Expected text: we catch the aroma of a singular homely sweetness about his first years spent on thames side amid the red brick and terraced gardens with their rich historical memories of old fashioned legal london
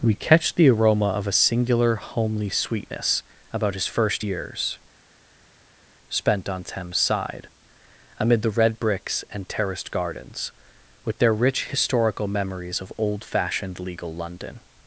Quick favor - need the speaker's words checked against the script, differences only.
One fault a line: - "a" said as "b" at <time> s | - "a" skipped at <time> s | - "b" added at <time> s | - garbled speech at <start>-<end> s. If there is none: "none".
- "brick" said as "bricks" at 8.8 s